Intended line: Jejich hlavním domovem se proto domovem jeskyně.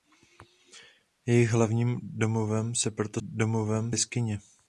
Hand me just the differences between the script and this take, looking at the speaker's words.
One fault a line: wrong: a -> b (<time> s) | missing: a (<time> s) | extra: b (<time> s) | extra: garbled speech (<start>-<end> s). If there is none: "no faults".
no faults